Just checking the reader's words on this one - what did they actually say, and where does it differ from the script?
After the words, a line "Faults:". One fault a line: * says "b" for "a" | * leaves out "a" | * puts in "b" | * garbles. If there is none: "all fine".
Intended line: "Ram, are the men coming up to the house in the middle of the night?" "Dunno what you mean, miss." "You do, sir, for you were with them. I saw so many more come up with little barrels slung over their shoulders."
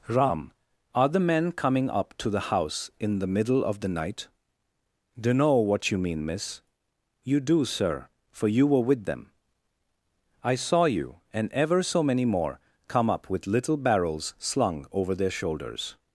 "Ram, are the men coming up to the house in the middle of the night?" "Dunno what you mean, miss." "You do, sir, for you were with them. I saw you and ever so many more come up with little barrels slung over their shoulders."
Faults:
* puts in "you and ever"